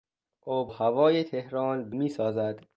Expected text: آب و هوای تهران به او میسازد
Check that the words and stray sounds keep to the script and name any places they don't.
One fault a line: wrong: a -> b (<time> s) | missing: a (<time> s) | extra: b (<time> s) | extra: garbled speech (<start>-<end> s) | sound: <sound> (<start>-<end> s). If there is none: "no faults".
missing: و (0.7 s)
missing: او (2.0 s)